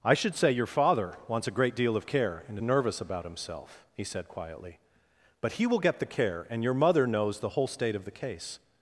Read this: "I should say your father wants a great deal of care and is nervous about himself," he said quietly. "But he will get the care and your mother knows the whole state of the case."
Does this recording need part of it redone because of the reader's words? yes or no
yes